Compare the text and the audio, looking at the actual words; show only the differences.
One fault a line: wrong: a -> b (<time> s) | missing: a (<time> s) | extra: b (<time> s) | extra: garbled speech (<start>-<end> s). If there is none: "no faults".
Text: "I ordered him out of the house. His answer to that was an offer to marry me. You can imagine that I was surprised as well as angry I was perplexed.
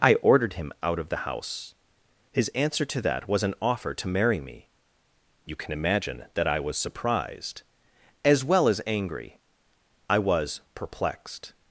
no faults